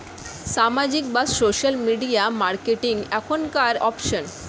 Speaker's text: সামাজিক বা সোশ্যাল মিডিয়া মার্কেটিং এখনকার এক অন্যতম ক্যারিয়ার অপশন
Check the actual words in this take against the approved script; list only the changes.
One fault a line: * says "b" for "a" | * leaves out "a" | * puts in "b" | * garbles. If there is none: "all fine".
* leaves out "এক অন্যতম ক্যারিয়ার"